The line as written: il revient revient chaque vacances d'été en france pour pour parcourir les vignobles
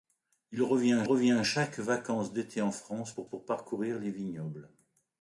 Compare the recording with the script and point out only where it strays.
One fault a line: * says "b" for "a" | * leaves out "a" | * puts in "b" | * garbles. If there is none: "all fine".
all fine